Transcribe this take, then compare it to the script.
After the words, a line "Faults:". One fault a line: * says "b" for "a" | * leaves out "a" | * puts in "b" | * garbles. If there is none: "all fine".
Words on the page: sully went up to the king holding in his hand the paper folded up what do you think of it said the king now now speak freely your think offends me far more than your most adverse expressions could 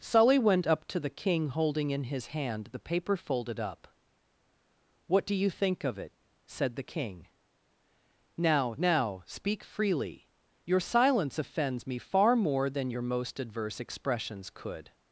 sully went up to the king holding in his hand the paper folded up what do you think of it said the king now now speak freely your silence offends me far more than your most adverse expressions could
Faults:
* says "silence" for "think"